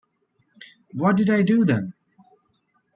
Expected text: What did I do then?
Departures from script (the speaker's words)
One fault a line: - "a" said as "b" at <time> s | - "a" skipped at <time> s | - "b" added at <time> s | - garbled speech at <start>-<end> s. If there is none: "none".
none